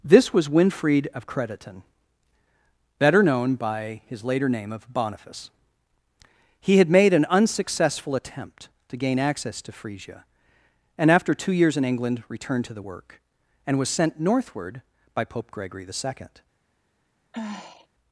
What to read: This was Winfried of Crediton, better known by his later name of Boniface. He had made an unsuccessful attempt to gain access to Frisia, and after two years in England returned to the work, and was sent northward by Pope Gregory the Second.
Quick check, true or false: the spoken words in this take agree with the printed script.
true